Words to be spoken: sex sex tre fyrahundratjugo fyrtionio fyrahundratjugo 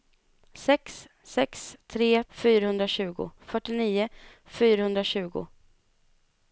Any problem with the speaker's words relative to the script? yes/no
no